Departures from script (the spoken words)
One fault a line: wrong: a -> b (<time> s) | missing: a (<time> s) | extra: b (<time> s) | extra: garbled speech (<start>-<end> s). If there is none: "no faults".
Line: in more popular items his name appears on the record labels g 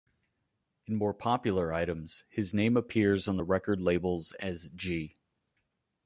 extra: as (4.4 s)